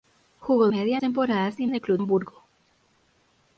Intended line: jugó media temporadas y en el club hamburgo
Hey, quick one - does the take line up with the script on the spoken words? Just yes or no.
yes